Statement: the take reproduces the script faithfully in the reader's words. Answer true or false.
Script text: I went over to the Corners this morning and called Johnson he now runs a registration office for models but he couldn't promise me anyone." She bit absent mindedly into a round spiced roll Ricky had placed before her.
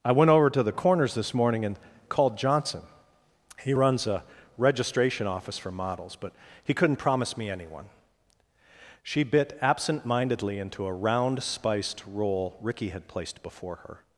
false